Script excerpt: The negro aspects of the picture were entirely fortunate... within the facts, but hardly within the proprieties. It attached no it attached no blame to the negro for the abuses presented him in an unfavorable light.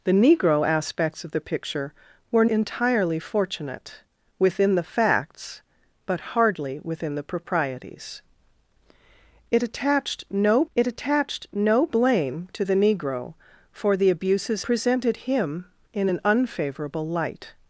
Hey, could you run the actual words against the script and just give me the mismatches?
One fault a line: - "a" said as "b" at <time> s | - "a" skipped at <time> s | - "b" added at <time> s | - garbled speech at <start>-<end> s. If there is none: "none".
none